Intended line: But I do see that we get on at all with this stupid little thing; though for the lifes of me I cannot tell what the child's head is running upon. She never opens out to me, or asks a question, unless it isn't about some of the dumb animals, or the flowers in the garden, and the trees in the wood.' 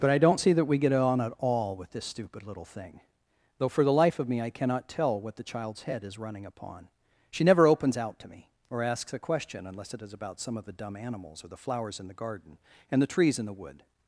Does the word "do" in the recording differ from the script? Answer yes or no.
yes